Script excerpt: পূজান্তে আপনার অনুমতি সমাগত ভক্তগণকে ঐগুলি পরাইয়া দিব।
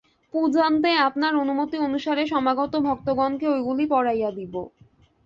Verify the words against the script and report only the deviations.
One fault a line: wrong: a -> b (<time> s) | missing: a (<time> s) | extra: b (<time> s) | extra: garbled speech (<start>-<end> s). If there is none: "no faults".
extra: অনুসারে (1.8 s)